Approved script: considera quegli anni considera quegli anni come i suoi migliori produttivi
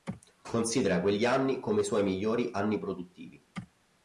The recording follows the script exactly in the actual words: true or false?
false